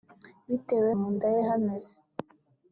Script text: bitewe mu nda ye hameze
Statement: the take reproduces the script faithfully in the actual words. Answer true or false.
true